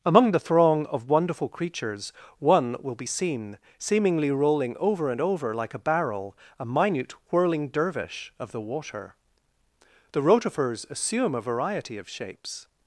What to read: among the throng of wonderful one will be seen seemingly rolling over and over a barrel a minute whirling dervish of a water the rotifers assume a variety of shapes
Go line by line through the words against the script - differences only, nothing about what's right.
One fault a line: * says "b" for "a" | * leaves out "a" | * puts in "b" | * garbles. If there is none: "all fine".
* puts in "creatures"
* puts in "like"
* says "the" for "a"